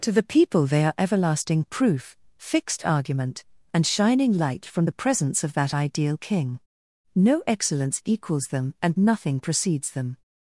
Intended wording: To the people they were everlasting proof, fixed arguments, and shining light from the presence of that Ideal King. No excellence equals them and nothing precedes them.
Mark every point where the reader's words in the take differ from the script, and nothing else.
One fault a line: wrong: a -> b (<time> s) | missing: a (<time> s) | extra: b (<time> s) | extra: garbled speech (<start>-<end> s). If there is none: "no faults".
wrong: were -> are (0.8 s)
wrong: arguments -> argument (2.8 s)